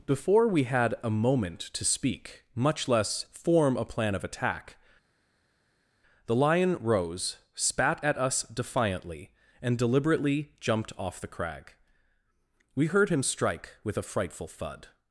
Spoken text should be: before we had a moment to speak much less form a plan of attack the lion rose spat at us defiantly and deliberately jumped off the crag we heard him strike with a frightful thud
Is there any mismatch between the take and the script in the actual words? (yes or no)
no